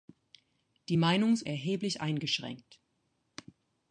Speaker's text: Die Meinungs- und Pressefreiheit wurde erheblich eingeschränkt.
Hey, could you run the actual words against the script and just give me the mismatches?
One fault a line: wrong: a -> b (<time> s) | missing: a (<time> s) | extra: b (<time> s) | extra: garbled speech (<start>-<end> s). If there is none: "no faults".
missing: und Pressefreiheit wurde (1.4 s)